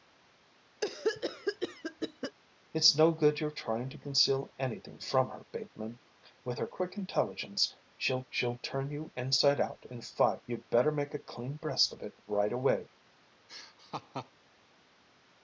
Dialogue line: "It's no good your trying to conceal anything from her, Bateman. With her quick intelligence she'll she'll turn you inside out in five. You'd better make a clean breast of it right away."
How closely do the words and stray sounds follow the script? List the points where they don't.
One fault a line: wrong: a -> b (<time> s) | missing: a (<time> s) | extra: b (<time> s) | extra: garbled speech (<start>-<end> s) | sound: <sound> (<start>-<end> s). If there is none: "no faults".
sound: cough (0.8-2.4 s)
sound: laugh (13.5-14.3 s)